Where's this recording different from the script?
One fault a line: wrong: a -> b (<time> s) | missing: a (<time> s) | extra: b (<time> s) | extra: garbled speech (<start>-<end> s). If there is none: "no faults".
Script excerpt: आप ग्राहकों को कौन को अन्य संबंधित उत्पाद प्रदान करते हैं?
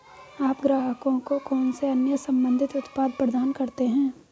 wrong: को -> से (1.7 s)